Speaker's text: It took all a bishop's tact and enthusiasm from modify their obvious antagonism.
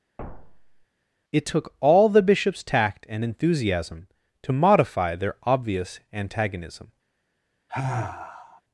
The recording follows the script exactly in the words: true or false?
false